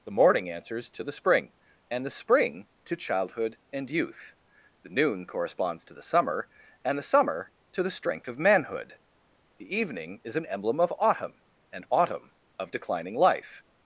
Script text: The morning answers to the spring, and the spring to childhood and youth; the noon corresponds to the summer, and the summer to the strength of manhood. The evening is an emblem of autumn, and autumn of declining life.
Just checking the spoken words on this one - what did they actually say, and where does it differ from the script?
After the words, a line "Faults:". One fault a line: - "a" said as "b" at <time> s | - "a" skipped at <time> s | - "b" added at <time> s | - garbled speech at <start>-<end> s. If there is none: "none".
The morning answers to the spring, and the spring to childhood and youth; the noon corresponds to the summer, and the summer to the strength of manhood. The evening is an emblem of autumn, and autumn of declining life.
Faults:
none